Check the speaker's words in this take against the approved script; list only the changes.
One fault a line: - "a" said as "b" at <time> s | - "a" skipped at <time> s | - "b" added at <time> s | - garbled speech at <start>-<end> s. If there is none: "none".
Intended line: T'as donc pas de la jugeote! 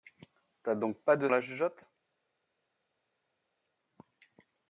none